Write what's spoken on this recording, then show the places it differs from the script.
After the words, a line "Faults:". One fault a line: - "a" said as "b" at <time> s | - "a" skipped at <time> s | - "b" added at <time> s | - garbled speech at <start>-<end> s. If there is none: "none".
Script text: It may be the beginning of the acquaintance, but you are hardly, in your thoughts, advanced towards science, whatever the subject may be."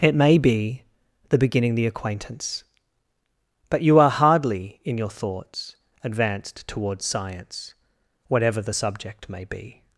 It may be the beginning the acquaintance, but you are hardly, in your thoughts, advanced towards science, whatever the subject may be."
Faults:
- "of" skipped at 1.8 s